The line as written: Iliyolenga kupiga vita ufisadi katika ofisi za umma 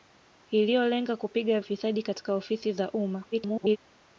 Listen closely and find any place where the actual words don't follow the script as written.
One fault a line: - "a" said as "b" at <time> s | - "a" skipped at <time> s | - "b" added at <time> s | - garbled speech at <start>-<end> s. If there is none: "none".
- "vita" skipped at 1.6 s
- garbled speech at 3.3-3.8 s